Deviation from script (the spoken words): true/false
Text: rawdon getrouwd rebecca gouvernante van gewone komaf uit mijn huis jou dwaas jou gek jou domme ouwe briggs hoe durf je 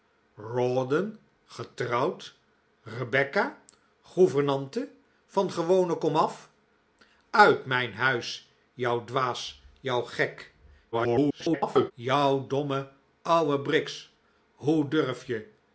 true